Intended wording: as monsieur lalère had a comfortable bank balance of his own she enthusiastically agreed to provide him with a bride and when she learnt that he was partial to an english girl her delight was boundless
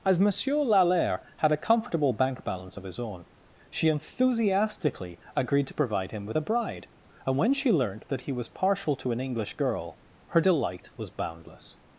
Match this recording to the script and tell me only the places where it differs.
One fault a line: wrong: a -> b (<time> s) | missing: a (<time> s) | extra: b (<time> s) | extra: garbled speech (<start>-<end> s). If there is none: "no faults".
no faults